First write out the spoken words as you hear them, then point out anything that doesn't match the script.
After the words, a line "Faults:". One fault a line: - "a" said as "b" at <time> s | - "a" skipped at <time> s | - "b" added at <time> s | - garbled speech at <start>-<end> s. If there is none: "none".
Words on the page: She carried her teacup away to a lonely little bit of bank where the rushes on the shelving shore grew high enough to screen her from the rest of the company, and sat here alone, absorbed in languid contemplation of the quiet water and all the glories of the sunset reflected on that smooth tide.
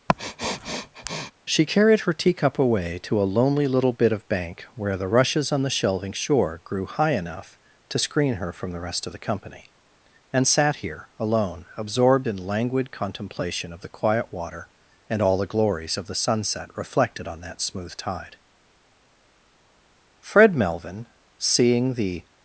She carried her teacup away to a lonely little bit of bank where the rushes on the shelving shore grew high enough to screen her from the rest of the company, and sat here alone, absorbed in languid contemplation of the quiet water and all the glories of the sunset reflected on that smooth tide. Fred Melvin, seeing the
Faults:
- "Fred Melvin seeing the" added at 20.2 s